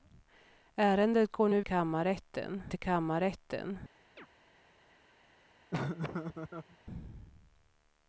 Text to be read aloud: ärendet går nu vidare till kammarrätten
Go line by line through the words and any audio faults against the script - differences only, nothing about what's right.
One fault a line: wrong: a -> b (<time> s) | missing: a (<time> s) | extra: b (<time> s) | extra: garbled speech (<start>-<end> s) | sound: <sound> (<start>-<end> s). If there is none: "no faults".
wrong: vidare -> kammarrätten (1.6 s)
sound: chirp (4.2-4.3 s)
sound: laugh (5.7-6.8 s)